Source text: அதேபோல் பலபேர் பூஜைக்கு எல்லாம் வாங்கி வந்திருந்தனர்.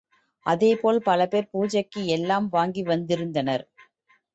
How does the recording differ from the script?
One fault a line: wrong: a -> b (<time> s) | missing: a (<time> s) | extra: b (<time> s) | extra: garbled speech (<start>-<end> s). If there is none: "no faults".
no faults